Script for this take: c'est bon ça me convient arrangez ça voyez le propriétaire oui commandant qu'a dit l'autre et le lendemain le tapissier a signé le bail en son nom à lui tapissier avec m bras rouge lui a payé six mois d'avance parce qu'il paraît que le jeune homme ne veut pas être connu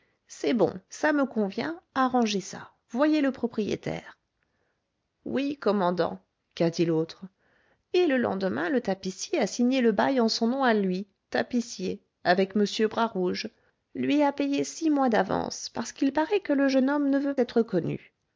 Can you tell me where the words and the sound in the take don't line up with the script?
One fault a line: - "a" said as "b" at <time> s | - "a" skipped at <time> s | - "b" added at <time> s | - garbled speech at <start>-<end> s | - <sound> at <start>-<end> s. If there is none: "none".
- "pas" skipped at 17.4 s